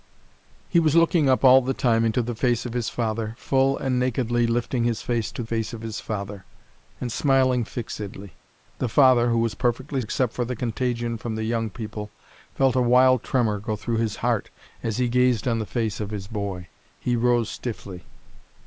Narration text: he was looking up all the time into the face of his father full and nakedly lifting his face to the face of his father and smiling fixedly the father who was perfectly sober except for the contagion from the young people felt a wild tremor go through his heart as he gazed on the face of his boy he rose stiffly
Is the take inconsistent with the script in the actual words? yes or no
yes